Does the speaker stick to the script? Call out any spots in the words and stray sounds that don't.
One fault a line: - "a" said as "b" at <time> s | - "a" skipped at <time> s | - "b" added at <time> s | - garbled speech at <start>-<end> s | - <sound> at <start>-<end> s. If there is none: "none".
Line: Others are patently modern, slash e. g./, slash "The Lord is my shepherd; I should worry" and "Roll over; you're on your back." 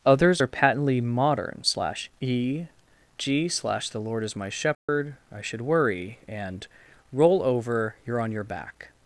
- dropout at 4.7-4.9 s